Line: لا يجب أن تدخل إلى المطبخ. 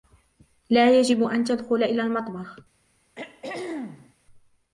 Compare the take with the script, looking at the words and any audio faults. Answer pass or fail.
fail